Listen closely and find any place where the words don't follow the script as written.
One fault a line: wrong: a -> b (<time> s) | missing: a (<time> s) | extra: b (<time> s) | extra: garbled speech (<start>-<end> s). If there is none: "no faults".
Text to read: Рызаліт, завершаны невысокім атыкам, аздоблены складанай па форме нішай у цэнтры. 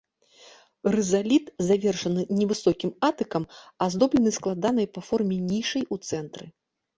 no faults